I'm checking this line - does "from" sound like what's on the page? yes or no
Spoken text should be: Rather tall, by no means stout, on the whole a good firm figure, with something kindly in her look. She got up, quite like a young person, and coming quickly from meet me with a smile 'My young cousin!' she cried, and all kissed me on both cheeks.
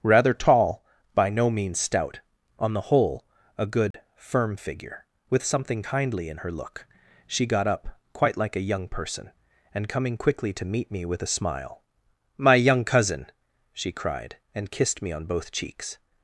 no